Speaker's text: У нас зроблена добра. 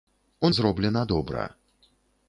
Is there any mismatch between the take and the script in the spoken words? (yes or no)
yes